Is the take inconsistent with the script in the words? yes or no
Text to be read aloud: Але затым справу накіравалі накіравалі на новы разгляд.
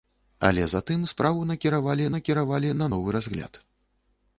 no